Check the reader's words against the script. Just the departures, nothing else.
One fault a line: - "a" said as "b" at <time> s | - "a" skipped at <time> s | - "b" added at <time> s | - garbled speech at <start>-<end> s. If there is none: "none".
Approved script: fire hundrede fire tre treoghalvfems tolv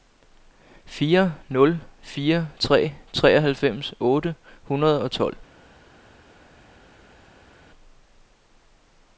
- "hundrede" said as "nul" at 1.5 s
- "otte hundrede og" added at 4.0 s